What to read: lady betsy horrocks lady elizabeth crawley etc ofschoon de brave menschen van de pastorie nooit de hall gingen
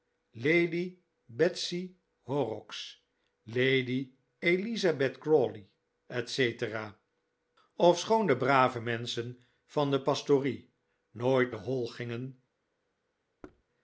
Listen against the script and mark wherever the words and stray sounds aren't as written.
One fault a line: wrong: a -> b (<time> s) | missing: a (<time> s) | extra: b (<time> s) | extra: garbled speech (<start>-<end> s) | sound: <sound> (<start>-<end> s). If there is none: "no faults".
sound: thud (13.4-13.6 s)